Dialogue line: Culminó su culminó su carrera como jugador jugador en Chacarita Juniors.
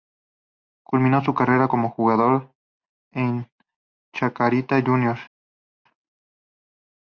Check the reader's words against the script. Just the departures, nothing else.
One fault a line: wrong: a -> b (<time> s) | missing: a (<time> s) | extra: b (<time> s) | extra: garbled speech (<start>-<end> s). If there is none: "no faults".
missing: culminó su (1.4 s)
missing: jugador (2.5 s)